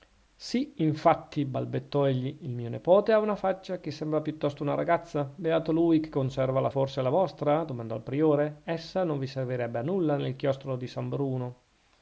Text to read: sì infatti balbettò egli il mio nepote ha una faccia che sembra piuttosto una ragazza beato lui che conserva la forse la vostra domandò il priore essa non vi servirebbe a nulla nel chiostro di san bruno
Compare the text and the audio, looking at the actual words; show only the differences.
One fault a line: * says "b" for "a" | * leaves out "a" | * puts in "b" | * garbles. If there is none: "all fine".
all fine